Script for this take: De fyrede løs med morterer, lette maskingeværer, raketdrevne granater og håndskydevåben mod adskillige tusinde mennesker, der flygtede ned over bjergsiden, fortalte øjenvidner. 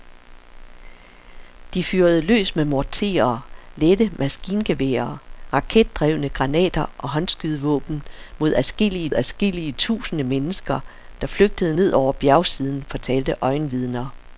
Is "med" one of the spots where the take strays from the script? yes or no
no